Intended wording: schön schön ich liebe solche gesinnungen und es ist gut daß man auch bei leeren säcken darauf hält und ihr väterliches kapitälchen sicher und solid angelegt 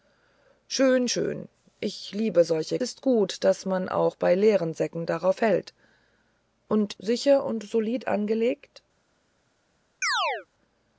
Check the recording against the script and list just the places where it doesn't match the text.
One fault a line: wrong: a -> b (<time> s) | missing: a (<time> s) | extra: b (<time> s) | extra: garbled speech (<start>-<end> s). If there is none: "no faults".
missing: gesinnungen und es (2.8 s)
missing: ihr väterliches kapitälchen (7.0 s)